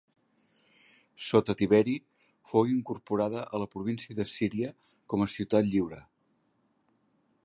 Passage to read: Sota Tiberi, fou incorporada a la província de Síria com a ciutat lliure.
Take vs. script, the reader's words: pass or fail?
pass